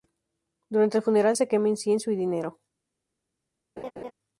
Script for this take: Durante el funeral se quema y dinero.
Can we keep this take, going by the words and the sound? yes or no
no